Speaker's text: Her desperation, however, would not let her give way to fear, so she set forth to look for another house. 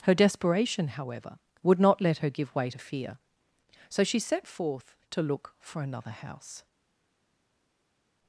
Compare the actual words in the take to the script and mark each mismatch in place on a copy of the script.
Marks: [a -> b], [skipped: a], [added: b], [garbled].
Her desperation, however, would not let her give way to fear, so she set forth to look for another house.